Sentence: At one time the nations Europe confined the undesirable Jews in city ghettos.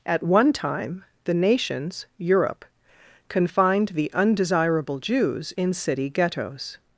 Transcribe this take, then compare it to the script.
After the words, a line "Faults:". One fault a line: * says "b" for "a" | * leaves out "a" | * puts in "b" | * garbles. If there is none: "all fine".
At one time the nations Europe confined the undesirable Jews in city ghettos.
Faults:
all fine